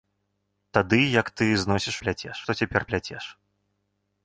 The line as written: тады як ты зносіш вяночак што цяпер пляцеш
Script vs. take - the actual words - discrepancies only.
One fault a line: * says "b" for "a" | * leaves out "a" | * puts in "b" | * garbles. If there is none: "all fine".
* says "пляцеш" for "вяночак"